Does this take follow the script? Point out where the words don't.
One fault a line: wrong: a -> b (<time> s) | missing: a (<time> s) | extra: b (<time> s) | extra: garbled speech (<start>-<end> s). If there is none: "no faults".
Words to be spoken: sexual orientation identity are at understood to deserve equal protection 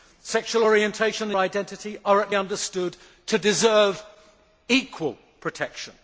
no faults